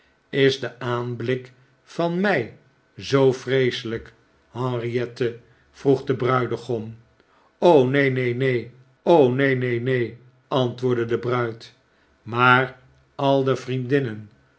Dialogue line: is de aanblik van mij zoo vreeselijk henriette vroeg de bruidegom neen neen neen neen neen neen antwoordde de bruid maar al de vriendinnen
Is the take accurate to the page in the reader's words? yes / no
yes